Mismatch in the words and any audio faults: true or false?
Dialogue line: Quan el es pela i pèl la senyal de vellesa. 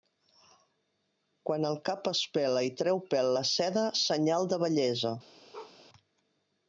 true